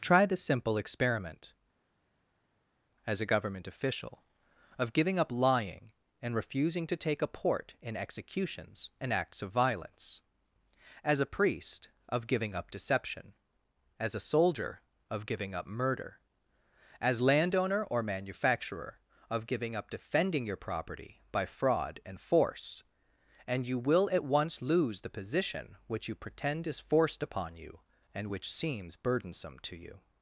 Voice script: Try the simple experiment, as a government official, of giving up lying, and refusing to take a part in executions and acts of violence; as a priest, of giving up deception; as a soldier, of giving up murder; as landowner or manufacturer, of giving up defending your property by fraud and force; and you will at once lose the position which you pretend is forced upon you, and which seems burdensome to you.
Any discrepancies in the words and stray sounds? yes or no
yes